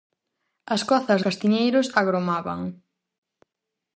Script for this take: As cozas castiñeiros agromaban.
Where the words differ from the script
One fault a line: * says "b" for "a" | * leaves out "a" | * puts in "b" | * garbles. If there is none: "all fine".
all fine